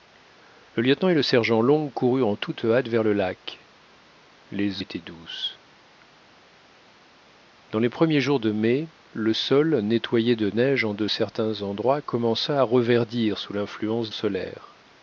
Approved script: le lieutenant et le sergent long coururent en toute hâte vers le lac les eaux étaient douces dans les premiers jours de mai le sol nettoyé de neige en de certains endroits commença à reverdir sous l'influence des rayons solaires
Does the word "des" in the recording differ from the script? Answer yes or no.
yes